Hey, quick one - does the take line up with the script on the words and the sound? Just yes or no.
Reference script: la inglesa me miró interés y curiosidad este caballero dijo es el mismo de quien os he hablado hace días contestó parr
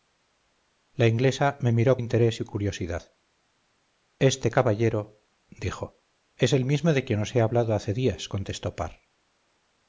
yes